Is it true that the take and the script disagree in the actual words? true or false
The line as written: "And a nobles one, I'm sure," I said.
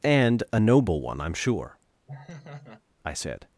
true